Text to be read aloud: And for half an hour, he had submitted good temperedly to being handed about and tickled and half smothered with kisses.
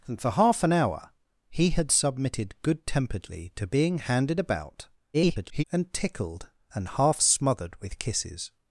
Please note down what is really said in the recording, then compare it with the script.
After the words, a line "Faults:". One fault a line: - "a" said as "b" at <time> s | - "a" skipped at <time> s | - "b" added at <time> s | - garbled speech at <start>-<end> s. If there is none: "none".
And for half an hour, he had submitted good temperedly to being handed about [garbled] and tickled and half smothered with kisses.
Faults:
- garbled speech at 5.1-5.6 s